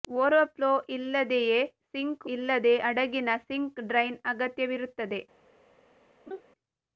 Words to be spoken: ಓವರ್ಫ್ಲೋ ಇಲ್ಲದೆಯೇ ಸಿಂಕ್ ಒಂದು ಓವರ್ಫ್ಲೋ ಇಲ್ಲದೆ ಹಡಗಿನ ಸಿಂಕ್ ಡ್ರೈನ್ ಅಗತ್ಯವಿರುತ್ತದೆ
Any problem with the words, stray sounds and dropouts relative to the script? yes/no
yes